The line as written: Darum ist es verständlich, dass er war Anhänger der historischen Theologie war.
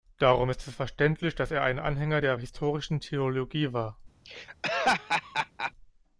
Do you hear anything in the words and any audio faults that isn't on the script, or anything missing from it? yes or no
yes